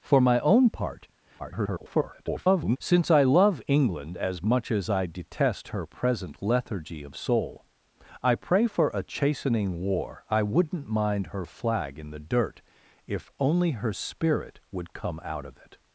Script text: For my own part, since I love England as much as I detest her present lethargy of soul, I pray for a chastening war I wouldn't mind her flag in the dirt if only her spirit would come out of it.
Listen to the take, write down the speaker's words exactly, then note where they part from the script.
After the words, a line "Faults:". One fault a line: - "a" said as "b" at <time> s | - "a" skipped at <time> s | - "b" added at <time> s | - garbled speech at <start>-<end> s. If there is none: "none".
For my own part, [garbled] since I love England as much as I detest her present lethargy of soul, I pray for a chastening war I wouldn't mind her flag in the dirt if only her spirit would come out of it.
Faults:
- garbled speech at 1.4-2.8 s